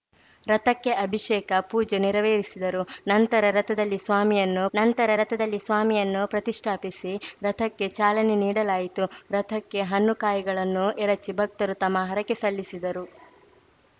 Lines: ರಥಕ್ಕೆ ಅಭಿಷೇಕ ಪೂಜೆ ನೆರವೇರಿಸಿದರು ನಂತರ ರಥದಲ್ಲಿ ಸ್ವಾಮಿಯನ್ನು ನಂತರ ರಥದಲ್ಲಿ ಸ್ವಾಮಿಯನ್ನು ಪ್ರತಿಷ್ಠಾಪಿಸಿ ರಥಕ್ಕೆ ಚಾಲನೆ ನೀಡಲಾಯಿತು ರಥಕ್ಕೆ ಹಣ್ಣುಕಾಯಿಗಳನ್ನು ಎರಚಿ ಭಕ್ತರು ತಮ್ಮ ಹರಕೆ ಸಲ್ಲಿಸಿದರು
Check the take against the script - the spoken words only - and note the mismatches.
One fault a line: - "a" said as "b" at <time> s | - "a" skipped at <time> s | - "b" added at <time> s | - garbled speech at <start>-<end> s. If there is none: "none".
none